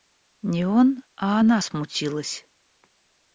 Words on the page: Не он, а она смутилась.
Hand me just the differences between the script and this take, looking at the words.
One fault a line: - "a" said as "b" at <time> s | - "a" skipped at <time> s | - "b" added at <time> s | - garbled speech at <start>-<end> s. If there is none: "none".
none